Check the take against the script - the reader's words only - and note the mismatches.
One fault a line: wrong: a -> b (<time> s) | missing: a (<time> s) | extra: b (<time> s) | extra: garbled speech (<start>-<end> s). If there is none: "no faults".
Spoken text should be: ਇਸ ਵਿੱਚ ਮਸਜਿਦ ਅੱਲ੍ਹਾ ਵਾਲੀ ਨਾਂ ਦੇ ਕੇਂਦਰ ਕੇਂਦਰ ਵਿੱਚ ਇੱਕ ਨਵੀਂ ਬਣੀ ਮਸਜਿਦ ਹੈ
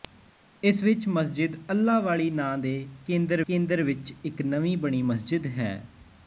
no faults